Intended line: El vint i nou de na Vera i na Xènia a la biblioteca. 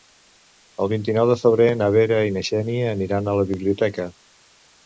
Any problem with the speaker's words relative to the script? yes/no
yes